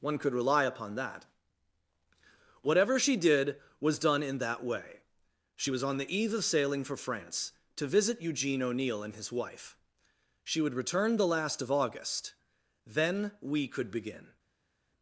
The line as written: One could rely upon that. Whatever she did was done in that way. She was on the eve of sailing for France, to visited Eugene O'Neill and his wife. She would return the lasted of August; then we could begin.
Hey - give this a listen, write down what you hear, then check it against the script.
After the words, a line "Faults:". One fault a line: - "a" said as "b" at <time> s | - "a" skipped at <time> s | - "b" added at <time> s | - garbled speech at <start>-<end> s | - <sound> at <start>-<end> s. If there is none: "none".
One could rely upon that. Whatever she did was done in that way. She was on the eve of sailing for France, to visit Eugene O'Neill and his wife. She would return the last of August; then we could begin.
Faults:
- "visited" said as "visit" at 7.9 s
- "lasted" said as "last" at 11.3 s